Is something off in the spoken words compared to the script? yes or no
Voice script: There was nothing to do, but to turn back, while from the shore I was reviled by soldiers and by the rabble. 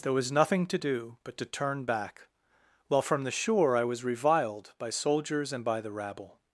no